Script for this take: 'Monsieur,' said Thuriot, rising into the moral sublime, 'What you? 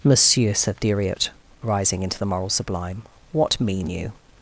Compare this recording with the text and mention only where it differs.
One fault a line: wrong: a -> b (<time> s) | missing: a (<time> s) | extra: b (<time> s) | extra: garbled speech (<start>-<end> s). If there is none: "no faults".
extra: mean (3.6 s)